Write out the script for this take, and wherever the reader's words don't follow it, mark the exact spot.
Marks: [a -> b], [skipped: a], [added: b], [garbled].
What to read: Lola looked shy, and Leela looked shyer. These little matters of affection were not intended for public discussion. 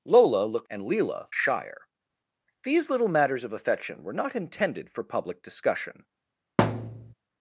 Lola looked [skipped: shy,] and Leela [skipped: looked] shyer. These little matters of affection were not intended for public discussion.